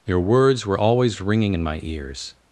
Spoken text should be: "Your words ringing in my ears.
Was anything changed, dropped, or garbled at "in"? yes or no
no